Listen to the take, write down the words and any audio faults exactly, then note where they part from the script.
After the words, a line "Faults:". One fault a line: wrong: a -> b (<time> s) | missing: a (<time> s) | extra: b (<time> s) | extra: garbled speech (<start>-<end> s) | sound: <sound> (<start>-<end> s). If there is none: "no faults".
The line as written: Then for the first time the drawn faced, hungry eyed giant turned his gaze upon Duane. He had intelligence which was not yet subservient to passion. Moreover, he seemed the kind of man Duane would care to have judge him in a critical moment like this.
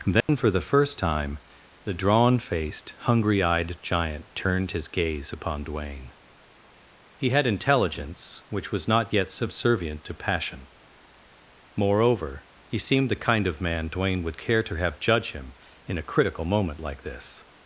Then for the first time the drawn faced, hungry eyed giant turned his gaze upon Duane. He had intelligence which was not yet subservient to passion. Moreover, he seemed the kind of man Duane would care to have judge him in a critical moment like this.
Faults:
sound: dropout (0.2-0.3 s)